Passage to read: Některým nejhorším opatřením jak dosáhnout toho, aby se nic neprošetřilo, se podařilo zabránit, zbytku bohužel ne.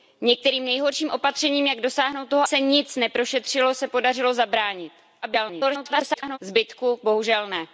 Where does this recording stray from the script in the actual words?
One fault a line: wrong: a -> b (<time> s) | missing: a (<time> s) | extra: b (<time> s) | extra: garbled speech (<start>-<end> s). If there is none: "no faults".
missing: aby (2.4 s)
extra: garbled speech (5.2-6.4 s)